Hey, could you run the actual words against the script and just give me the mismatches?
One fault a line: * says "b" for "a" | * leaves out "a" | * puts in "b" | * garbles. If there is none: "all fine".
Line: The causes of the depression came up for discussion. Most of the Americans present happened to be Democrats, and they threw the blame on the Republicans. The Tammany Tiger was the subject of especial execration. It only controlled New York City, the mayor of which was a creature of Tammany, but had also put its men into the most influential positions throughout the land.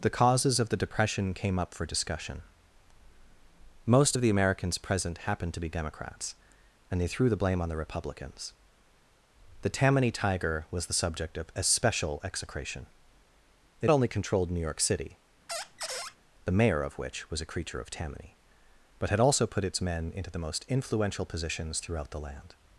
all fine